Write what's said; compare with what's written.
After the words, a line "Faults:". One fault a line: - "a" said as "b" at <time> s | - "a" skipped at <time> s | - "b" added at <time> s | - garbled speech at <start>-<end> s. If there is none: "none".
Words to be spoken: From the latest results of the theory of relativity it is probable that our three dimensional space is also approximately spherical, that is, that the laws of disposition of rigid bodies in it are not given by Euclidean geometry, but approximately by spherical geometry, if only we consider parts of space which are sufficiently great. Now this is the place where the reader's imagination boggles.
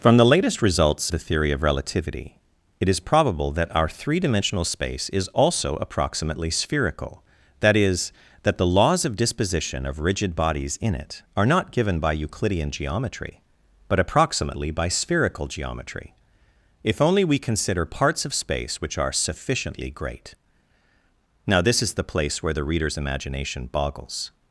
From the latest results the theory of relativity it is probable that our three dimensional space is also approximately spherical, that is, that the laws of disposition of rigid bodies in it are not given by Euclidean geometry, but approximately by spherical geometry, if only we consider parts of space which are sufficiently great. Now this is the place where the reader's imagination boggles.
Faults:
- "of" skipped at 1.1 s